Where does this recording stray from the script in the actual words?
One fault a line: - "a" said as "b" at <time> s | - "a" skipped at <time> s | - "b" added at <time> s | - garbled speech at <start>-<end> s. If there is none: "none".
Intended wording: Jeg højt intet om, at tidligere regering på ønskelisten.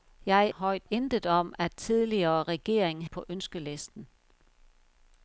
none